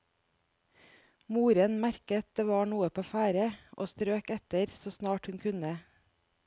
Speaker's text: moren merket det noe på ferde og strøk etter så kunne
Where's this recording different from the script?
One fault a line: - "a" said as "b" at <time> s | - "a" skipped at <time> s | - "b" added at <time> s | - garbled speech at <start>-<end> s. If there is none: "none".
- "var" added at 2.5 s
- "snart hun" added at 4.9 s